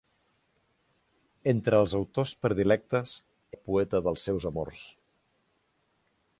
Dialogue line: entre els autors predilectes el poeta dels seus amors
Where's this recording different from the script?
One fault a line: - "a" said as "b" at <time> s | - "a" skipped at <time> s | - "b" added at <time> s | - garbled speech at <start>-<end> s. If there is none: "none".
none